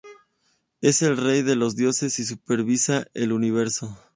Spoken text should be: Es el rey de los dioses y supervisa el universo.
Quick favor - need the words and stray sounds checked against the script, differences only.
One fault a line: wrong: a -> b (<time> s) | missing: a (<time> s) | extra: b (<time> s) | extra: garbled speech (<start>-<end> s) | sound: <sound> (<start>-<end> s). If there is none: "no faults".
no faults